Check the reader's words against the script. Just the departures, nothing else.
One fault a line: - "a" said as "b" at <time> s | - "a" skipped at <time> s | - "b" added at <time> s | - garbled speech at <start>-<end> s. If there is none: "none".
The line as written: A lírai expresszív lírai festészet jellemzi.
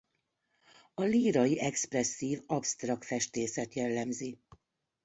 - "lírai" said as "absztrakt" at 2.5 s